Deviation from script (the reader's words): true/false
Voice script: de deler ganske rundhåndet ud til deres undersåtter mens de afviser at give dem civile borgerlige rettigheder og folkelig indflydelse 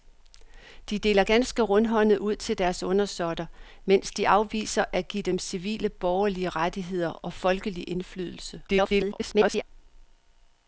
true